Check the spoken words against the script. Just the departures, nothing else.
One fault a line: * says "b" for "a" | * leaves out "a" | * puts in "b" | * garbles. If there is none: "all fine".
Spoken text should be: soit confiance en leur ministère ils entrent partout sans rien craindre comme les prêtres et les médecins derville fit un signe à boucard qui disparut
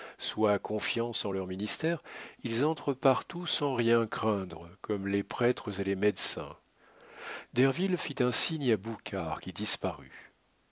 all fine